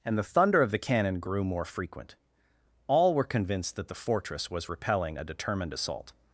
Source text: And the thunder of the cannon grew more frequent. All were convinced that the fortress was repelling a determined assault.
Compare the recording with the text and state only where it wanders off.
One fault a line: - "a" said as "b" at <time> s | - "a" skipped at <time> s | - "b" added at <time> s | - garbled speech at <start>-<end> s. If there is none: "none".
none